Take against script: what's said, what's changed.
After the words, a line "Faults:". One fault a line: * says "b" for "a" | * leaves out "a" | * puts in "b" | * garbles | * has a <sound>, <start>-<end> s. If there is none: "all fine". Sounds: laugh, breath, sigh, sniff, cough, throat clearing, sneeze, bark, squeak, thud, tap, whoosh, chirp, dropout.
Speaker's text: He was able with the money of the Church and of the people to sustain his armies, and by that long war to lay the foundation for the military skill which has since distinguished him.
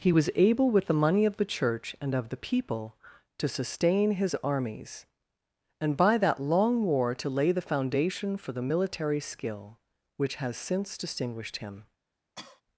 He was able with the money of the Church and of the people to sustain his armies, and by that long war to lay the foundation for the military skill which has since distinguished him.
Faults:
* has a cough, 12.4-12.6 s